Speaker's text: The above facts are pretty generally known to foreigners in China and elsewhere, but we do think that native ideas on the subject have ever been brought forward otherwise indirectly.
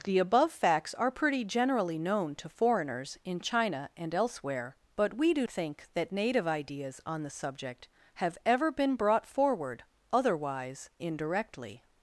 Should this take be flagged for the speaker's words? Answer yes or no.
no